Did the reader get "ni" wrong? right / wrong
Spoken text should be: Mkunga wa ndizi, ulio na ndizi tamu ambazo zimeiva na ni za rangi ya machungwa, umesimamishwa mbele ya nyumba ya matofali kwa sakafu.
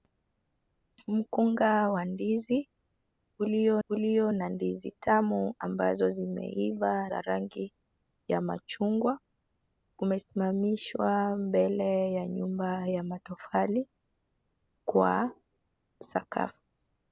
wrong